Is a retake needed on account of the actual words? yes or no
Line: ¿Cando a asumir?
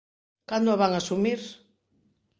yes